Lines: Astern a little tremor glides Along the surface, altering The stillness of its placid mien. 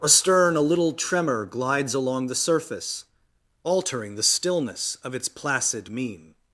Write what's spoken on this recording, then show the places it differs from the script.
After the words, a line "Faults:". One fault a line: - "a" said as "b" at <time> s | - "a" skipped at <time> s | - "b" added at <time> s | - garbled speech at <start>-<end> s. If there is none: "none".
Astern a little tremor glides Along the surface, altering The stillness of its placid mien.
Faults:
none